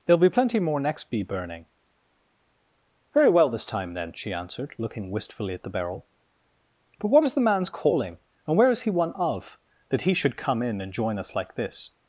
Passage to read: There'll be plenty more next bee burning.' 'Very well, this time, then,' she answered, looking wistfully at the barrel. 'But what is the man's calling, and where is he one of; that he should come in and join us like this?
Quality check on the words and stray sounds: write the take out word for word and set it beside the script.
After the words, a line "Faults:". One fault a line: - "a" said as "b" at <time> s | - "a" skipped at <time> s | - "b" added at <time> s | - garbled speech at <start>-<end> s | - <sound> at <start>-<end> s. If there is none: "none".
There'll be plenty more next bee burning.' 'Very well, this time, then,' she answered, looking wistfully at the barrel. 'But what is the man's calling, and where is he one of; that he should come in and join us like this?
Faults:
none